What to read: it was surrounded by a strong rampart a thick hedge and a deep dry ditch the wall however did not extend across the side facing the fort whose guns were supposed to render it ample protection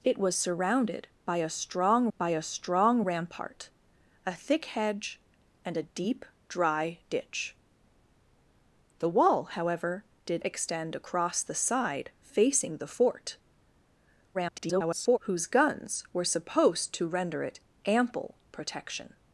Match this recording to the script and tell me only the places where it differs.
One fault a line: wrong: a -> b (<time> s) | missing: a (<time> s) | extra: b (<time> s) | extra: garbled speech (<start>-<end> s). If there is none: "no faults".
extra: by a strong (2.2 s)
missing: not (10.4 s)
extra: garbled speech (14.3-15.2 s)